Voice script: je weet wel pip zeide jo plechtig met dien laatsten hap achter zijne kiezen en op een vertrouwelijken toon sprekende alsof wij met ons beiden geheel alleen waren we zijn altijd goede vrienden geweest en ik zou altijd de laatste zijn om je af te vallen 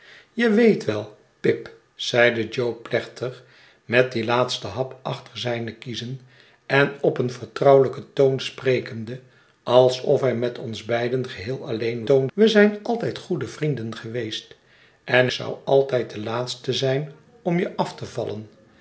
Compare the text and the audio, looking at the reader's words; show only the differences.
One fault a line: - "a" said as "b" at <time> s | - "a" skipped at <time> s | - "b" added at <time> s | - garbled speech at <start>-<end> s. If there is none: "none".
- "waren" said as "toon" at 12.0 s
- "ik" skipped at 15.3 s